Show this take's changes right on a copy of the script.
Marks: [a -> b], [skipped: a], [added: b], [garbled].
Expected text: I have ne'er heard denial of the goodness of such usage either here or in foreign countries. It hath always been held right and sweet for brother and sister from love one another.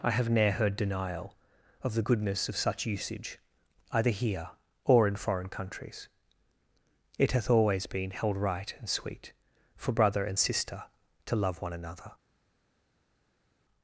I have ne'er heard denial of the goodness of such usage either here or in foreign countries. It hath always been held right and sweet for brother and sister [from -> to] love one another.